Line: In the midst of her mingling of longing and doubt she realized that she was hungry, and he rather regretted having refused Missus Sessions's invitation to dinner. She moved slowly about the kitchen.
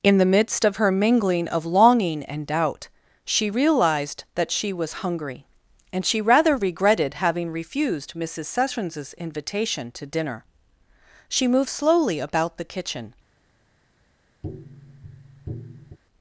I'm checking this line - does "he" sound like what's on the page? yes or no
no